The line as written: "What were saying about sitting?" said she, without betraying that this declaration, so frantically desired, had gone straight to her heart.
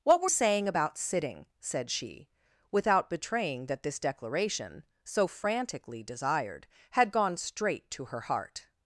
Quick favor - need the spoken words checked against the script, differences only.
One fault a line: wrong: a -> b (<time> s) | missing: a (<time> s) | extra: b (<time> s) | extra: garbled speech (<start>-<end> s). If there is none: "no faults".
no faults